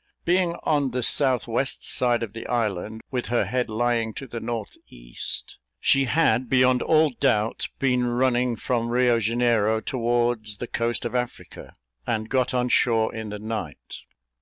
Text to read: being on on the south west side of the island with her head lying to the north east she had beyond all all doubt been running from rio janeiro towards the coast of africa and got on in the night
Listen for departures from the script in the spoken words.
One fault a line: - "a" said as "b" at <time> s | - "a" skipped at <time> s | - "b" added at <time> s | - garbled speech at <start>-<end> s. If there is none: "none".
- "on" skipped at 0.9 s
- "all" skipped at 7.1 s
- "shore" added at 12.7 s